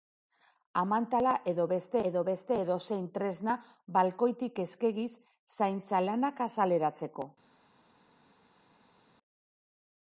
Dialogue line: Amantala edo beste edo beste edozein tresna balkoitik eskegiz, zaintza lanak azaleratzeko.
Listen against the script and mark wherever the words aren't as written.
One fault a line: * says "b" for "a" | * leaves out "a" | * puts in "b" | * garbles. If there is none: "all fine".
all fine